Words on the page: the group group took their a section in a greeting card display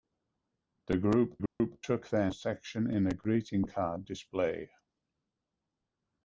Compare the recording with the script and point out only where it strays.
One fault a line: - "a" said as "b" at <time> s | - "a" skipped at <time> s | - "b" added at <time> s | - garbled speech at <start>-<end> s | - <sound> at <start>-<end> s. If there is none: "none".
- dropout at 1.5-1.6 s